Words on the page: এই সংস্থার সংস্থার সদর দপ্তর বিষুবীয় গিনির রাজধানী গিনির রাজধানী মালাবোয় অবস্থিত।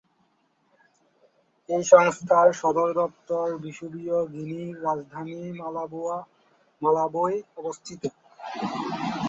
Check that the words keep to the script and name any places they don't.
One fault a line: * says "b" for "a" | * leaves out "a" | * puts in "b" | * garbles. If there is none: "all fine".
* leaves out "সংস্থার"
* leaves out "গিনির রাজধানী"